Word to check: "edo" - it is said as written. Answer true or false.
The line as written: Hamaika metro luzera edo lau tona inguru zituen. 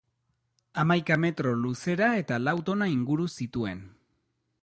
false